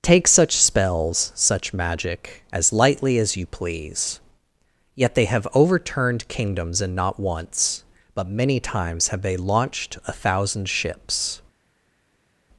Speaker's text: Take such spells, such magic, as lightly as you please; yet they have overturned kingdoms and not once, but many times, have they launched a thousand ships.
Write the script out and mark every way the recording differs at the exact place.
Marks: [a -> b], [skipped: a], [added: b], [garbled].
Take such spells, such magic, as lightly as you please; yet they have overturned kingdoms and not once, but many times, have they launched a thousand ships.